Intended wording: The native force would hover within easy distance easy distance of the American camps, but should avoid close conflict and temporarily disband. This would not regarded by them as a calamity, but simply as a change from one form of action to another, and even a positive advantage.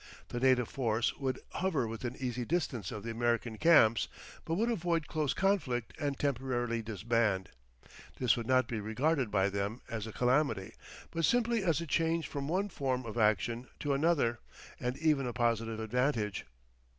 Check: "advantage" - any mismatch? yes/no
no